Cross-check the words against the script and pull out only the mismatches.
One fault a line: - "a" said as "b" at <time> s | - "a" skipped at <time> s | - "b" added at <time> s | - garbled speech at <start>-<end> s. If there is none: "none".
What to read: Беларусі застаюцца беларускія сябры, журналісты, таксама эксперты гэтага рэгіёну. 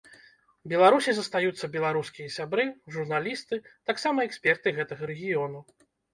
none